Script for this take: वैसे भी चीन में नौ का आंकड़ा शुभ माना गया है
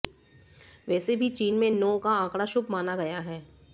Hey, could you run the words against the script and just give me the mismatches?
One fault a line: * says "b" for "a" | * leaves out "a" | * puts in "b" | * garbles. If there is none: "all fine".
all fine